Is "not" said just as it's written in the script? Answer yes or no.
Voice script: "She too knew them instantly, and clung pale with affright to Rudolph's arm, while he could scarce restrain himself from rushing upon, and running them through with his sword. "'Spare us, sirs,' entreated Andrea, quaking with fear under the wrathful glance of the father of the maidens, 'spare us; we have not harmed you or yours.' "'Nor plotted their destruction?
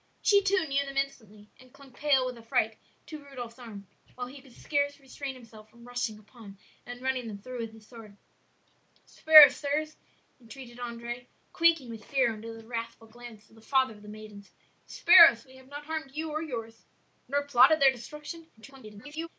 yes